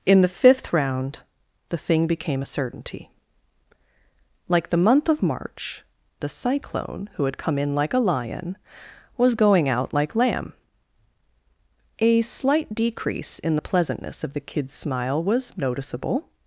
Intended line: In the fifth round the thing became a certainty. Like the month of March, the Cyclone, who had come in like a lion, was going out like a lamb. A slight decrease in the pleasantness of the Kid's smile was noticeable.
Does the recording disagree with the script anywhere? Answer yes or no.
yes